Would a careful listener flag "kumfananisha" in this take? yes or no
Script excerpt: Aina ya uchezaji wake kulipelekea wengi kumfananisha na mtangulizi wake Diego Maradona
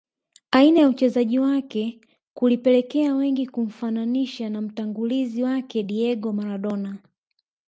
no